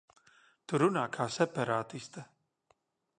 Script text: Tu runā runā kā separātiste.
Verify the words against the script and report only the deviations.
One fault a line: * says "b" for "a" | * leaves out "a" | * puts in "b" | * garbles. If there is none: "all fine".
* leaves out "runā"